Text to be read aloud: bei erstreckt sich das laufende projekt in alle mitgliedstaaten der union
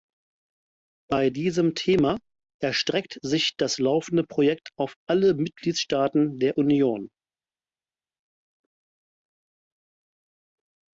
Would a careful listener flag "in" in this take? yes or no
yes